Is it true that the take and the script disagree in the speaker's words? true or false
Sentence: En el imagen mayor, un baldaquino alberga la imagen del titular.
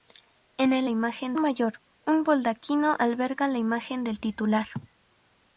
false